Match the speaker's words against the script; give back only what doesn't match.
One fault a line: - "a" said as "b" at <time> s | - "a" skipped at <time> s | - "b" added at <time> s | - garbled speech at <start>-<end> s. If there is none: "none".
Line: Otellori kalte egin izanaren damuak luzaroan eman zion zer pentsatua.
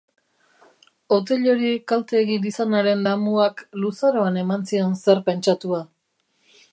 none